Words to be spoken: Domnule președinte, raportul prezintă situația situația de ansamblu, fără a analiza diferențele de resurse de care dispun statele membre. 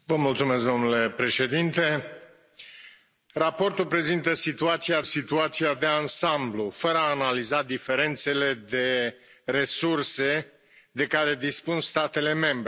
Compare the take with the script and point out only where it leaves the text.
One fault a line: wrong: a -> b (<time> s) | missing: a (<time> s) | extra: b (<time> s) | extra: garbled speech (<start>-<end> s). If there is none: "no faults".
no faults